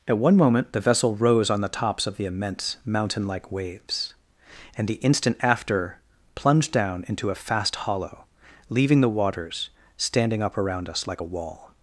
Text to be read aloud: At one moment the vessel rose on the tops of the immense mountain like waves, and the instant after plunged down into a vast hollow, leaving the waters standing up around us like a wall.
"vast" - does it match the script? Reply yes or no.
no